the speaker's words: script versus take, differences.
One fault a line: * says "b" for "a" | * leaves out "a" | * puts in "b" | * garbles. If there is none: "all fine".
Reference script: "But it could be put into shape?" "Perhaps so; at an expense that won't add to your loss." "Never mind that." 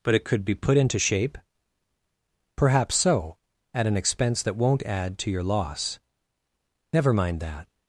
all fine